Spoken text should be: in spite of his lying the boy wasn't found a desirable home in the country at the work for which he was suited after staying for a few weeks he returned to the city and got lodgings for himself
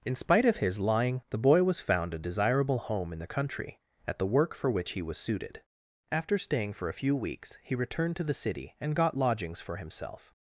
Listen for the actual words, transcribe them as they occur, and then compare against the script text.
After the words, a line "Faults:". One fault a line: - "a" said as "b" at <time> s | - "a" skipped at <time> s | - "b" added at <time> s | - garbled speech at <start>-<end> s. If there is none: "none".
in spite of his lying the boy was found a desirable home in the country at the work for which he was suited after staying for a few weeks he returned to the city and got lodgings for himself
Faults:
- "wasn't" said as "was" at 1.6 s